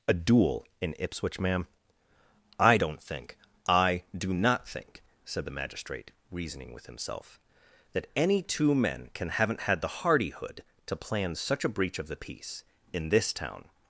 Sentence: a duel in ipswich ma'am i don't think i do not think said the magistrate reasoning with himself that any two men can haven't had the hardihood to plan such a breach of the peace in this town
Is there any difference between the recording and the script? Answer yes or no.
no